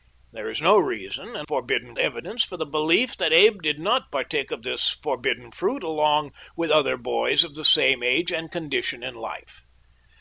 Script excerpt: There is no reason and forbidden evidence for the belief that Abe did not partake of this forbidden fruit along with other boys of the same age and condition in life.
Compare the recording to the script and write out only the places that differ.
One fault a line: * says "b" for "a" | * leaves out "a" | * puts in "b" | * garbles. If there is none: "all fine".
all fine